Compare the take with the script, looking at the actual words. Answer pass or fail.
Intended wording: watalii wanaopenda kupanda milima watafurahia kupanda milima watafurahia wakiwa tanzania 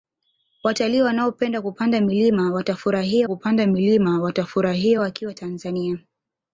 pass